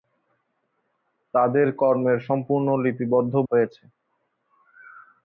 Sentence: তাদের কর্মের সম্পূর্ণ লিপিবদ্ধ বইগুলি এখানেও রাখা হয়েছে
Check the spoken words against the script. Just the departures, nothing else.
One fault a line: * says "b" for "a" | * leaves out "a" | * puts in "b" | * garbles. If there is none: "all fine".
* leaves out "বইগুলি এখানেও রাখা"